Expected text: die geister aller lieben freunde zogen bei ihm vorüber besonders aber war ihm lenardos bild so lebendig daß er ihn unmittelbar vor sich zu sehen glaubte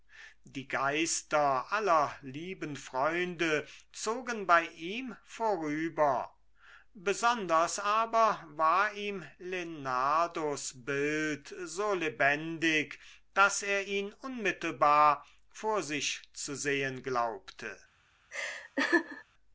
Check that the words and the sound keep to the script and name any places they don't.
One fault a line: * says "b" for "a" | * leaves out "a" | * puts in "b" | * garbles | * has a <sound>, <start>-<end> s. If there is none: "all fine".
* has a laugh, 18.3-19.2 s